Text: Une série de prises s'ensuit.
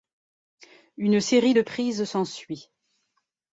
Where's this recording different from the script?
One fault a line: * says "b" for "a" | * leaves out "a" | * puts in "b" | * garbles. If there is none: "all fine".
all fine